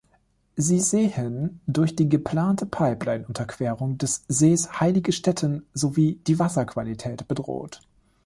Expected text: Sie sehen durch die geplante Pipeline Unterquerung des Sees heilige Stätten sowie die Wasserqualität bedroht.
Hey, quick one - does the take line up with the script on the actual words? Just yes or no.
yes